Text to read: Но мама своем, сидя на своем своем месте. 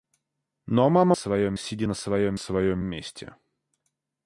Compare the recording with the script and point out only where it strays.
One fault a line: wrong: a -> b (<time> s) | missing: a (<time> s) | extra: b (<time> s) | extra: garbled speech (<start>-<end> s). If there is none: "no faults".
no faults